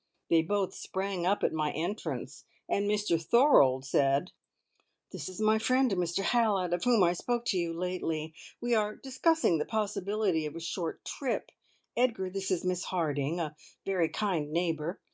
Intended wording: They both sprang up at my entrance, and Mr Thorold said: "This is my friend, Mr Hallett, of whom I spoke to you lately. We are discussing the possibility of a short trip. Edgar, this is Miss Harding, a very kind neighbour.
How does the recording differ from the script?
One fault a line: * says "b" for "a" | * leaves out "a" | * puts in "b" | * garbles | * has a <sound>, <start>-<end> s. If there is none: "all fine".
all fine